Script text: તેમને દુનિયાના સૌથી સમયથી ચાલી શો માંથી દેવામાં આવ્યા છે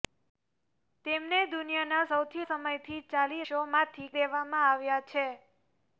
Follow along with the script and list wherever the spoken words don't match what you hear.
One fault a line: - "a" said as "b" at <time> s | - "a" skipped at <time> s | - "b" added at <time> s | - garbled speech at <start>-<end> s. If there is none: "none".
none